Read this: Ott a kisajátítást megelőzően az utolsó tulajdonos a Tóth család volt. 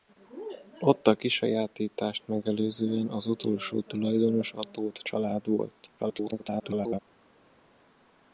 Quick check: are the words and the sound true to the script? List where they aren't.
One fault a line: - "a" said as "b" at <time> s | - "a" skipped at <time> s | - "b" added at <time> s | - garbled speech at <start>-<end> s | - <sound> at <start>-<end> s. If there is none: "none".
- garbled speech at 6.0-7.0 s